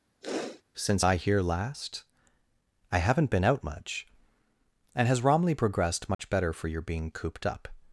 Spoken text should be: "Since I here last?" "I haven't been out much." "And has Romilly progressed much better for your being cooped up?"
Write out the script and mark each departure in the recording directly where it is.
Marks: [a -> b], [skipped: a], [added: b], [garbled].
"Since I here last?" "I haven't been out much." "And has Romilly progressed much better for your being cooped up?"